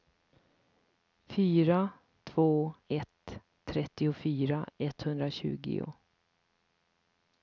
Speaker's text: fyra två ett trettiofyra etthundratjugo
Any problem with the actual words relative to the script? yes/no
no